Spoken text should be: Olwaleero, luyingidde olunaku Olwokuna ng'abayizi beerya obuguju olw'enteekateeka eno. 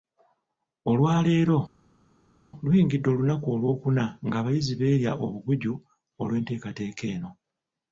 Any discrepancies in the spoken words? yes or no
no